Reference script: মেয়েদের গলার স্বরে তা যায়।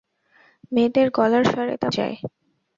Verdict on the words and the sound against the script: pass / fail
pass